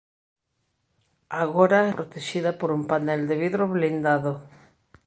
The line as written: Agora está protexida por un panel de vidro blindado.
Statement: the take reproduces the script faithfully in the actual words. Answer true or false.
false